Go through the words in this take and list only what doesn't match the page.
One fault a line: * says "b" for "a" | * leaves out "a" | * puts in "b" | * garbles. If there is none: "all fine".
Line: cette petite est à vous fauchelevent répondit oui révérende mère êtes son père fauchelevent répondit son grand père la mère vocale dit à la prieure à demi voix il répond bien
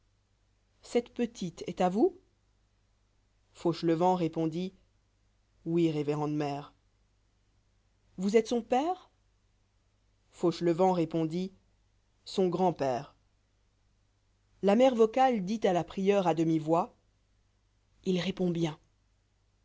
* puts in "vous"